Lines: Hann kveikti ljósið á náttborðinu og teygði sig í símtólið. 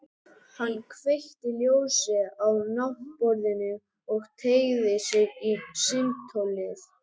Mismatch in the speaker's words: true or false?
false